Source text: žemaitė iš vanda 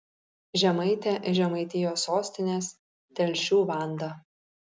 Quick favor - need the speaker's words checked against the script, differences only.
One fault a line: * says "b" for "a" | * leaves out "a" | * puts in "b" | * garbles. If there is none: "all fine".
* puts in "žemaitijos sostinės telšių"